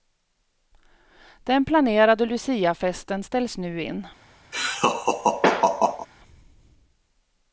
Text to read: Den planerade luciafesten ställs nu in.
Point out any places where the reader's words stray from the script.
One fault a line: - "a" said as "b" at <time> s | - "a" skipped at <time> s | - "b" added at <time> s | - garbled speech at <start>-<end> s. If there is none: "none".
none